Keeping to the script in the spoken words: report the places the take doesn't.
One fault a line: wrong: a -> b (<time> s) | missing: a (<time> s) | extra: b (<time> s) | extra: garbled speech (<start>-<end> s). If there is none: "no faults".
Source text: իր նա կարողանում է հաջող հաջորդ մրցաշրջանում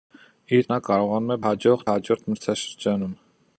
no faults